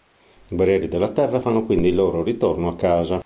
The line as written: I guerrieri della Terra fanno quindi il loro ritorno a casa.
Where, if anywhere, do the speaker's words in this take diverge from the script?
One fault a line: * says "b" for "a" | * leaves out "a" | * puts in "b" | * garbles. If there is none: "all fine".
all fine